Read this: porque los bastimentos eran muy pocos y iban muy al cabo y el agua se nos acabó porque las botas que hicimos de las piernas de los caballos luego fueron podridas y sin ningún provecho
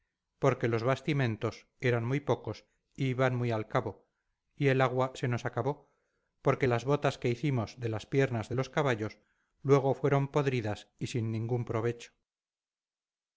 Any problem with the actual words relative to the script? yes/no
no